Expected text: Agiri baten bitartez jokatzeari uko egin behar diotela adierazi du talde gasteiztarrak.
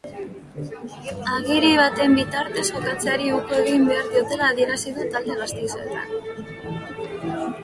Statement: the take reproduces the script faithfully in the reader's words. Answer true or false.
true